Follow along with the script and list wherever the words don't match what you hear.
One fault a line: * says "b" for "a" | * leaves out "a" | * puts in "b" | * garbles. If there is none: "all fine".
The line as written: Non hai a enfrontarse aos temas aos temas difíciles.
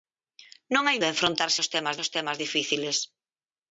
all fine